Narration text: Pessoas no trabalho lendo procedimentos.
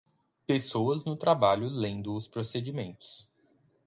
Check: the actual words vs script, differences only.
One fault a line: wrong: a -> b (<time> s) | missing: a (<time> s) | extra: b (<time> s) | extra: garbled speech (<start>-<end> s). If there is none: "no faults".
extra: os (2.1 s)